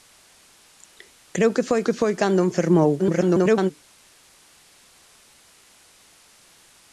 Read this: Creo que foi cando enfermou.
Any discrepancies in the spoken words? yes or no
yes